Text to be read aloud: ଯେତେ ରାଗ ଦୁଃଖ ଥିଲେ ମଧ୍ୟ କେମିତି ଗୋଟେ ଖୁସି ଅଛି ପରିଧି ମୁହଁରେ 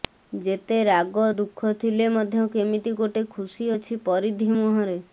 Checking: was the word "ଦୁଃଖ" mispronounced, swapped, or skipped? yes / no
no